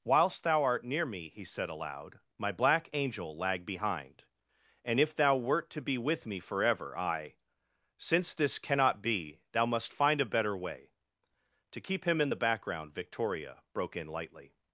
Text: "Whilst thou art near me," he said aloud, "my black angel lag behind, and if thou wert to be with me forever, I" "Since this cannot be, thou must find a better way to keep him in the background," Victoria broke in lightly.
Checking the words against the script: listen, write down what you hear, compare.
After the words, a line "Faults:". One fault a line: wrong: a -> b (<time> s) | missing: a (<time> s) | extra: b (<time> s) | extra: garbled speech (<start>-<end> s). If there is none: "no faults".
"Whilst thou art near me," he said aloud, "my black angel lag behind, and if thou wert to be with me forever, I" "Since this cannot be, thou must find a better way to keep him in the background," Victoria broke in lightly.
Faults:
no faults